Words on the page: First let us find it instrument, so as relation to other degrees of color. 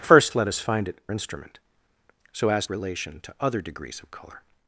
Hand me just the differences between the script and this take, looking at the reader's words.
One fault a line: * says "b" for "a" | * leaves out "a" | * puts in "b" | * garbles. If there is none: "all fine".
all fine